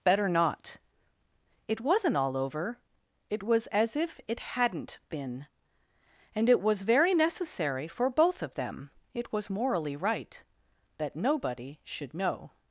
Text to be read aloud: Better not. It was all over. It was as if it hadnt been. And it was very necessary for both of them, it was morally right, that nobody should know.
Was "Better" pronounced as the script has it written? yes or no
yes